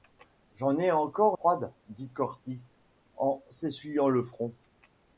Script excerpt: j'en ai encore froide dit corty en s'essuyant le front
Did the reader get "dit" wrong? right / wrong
right